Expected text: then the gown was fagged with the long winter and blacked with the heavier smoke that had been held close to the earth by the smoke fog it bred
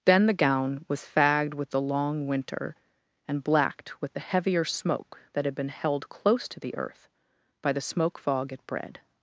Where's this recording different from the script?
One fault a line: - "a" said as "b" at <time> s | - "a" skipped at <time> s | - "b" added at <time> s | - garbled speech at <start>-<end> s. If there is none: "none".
none